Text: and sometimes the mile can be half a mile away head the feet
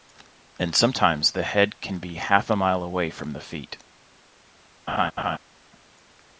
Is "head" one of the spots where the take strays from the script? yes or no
yes